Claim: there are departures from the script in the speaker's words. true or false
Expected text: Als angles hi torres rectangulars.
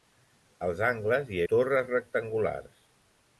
false